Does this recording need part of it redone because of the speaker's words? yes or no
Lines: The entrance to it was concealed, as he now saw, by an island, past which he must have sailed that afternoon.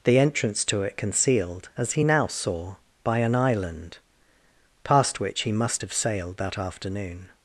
yes